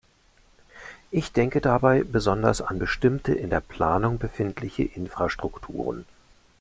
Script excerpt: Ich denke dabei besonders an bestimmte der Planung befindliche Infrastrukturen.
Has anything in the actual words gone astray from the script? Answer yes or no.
yes